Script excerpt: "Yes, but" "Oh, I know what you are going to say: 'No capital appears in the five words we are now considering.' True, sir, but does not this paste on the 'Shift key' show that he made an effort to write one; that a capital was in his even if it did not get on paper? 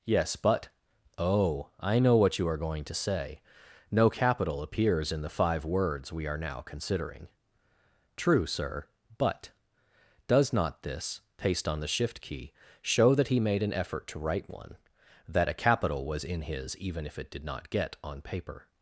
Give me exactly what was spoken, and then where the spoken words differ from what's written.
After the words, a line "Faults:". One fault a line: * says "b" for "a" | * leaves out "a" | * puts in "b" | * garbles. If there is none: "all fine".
"Yes, but" "Oh, I know what you are going to say: 'No capital appears in the five words we are now considering.' True, sir, but does not this paste on the 'Shift key' show that he made an effort to write one; that a capital was in his even if it did not get on paper?
Faults:
all fine